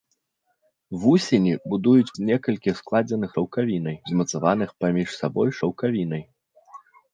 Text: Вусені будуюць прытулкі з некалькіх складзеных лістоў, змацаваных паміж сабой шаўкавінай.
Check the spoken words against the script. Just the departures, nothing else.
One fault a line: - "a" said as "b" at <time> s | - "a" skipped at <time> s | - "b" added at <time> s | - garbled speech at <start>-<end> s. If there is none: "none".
- "прытулкі" skipped at 2.1 s
- "лістоў" said as "шаўкавінай" at 3.4 s